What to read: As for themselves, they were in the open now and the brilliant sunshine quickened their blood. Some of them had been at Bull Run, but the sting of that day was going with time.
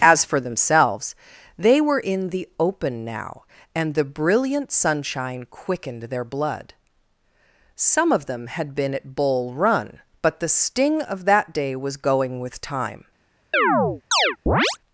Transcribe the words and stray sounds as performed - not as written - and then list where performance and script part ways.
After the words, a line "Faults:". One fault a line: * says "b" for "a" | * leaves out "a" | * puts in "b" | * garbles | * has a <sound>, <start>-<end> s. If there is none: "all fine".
As for themselves, they were in the open now and the brilliant sunshine quickened their blood. Some of them had been at Bull Run, but the sting of that day was going with time.
Faults:
* has a chirp, 13.5-14.8 s